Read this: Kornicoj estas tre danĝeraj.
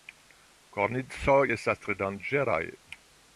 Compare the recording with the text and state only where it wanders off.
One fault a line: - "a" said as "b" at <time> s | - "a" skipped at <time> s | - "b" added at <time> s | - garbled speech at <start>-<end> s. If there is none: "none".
none